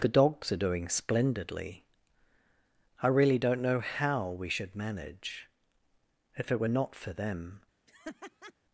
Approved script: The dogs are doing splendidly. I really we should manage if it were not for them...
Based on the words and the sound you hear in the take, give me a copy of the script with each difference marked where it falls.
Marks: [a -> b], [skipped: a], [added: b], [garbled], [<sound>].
The dogs are doing splendidly. I really [added: don't know how] we should manage if it were not for them... [laugh]